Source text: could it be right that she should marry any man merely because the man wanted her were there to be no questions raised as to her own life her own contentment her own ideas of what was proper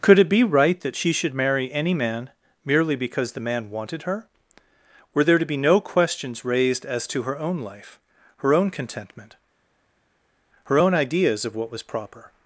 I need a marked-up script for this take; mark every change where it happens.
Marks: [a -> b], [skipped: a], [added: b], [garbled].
could it be right that she should marry any man merely because the man wanted her were there to be no questions raised as to her own life her own contentment her own ideas of what was proper